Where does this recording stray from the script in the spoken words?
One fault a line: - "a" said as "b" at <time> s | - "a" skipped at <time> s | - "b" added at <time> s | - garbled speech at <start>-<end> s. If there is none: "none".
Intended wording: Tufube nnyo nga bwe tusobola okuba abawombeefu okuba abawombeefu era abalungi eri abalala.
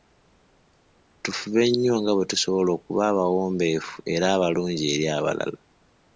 - "okuba abawombeefu" skipped at 4.0 s